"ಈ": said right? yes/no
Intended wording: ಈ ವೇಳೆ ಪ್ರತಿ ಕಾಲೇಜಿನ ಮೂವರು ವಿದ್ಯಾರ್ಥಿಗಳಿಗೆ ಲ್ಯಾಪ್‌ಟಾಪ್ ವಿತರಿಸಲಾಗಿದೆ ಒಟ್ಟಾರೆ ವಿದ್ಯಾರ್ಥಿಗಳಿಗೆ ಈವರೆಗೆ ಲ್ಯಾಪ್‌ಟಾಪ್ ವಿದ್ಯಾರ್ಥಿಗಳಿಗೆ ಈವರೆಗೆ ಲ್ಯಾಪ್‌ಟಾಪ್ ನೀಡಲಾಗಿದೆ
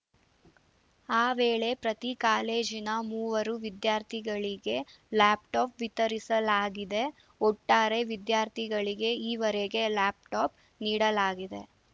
no